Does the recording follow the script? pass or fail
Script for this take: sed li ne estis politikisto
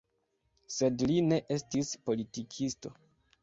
pass